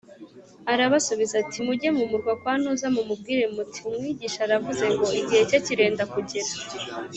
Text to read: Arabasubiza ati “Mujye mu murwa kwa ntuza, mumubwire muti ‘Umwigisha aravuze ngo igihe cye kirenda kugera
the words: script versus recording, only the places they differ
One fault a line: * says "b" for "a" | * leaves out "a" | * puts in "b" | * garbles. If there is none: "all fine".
all fine